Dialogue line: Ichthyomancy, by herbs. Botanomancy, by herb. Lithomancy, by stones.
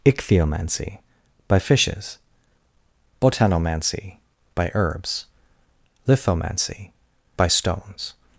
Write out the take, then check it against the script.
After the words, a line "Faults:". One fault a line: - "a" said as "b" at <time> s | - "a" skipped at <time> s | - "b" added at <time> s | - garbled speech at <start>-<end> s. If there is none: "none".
Ichthyomancy, by fishes. Botanomancy, by herbs. Lithomancy, by stones.
Faults:
- "herbs" said as "fishes" at 1.6 s
- "herb" said as "herbs" at 4.7 s